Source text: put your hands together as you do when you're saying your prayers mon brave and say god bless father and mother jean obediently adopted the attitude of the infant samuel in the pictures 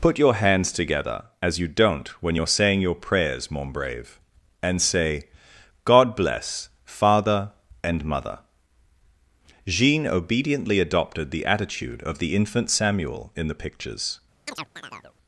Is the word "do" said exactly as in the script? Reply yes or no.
no